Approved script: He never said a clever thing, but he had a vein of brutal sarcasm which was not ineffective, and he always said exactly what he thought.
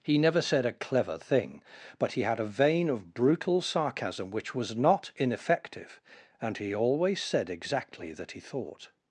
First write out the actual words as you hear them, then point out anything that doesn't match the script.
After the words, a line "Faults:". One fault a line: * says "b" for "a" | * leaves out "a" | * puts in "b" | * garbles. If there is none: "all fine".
He never said a clever thing, but he had a vein of brutal sarcasm which was not ineffective, and he always said exactly that he thought.
Faults:
* says "that" for "what"